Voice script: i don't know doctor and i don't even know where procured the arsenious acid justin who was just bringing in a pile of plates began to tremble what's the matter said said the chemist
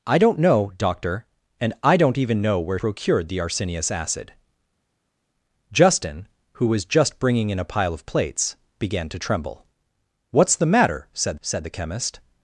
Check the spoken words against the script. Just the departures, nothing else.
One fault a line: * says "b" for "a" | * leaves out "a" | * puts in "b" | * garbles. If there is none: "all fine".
all fine